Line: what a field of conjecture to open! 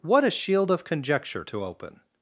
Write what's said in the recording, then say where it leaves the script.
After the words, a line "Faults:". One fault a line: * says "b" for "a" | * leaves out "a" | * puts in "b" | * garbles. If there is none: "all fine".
what a shield of conjecture to open!
Faults:
* says "shield" for "field"